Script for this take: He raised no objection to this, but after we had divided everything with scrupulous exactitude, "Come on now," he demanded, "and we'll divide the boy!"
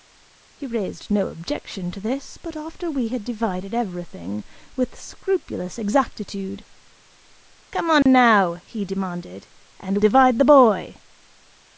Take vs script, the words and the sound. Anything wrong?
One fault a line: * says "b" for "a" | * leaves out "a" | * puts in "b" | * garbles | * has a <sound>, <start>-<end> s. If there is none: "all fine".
* has a dropout, 8.0-8.1 s
* leaves out "we'll"